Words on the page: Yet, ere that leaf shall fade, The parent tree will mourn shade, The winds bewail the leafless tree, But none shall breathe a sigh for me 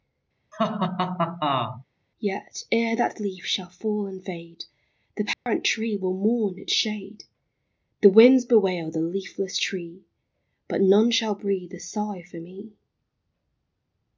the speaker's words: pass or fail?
fail